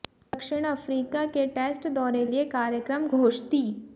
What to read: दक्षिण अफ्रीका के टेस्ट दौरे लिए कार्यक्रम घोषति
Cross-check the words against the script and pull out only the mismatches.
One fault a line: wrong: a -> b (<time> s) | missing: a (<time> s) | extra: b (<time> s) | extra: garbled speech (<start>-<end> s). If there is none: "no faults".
no faults